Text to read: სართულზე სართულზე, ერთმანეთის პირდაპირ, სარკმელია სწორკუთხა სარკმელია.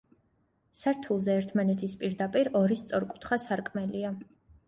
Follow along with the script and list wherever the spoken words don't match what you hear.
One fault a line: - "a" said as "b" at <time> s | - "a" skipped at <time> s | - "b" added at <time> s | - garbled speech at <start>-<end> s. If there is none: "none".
- "სართულზე" skipped at 1.4 s
- "სარკმელია" said as "ორი" at 2.6 s